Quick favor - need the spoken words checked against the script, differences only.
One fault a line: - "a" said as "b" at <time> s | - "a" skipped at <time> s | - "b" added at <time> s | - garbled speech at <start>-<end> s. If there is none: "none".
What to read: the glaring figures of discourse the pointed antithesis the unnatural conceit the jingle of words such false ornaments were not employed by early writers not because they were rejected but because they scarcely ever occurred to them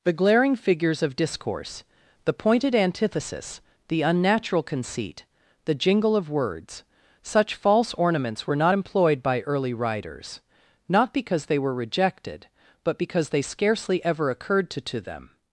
- "to" added at 14.8 s